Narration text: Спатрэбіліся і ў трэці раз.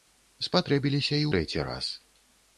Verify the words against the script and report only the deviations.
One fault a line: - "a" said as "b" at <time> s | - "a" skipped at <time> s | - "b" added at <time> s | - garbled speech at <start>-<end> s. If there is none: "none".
- "ў" skipped at 1.3 s